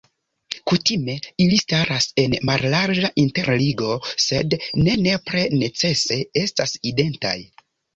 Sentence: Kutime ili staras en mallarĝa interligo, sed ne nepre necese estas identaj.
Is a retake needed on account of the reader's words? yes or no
no